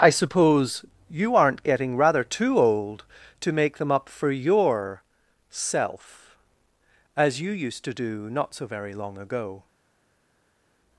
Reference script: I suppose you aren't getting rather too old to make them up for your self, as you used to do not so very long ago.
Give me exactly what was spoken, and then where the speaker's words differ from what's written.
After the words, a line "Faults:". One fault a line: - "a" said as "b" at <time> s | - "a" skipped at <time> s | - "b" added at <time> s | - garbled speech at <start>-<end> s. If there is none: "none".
I suppose you aren't getting rather too old to make them up for your self, as you used to do not so very long ago.
Faults:
none